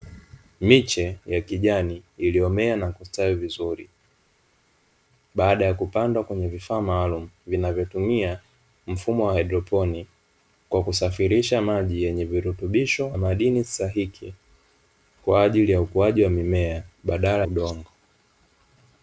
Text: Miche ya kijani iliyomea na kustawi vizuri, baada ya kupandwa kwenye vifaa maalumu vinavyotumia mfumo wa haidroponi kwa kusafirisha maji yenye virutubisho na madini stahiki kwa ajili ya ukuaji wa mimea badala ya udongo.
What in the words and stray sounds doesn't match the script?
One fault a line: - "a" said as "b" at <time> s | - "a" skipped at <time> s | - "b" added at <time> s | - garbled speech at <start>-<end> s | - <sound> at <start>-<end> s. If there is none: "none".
- "na" skipped at 13.1 s
- "ya" skipped at 17.5 s